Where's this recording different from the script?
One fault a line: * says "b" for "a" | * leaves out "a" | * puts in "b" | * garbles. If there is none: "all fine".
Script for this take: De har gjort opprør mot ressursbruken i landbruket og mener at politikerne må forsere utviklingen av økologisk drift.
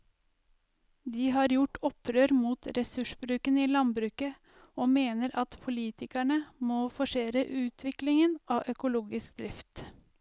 all fine